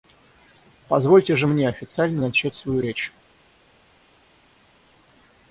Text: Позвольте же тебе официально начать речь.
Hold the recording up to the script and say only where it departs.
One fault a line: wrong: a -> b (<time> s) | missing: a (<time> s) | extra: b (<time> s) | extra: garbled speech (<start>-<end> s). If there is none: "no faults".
wrong: тебе -> мне (1.4 s)
extra: свою (2.5 s)